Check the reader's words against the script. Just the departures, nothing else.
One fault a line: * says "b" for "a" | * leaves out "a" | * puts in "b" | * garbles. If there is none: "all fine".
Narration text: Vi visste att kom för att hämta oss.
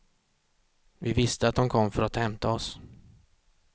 * puts in "de"